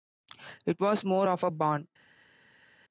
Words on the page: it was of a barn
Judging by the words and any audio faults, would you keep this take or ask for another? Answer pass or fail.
fail